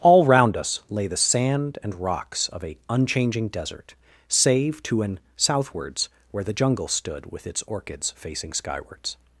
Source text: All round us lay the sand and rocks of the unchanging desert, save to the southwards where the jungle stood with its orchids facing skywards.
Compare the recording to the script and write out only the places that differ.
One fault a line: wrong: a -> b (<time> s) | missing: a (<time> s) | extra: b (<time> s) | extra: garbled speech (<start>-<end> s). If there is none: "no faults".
wrong: the -> a (2.6 s)
wrong: the -> an (5.0 s)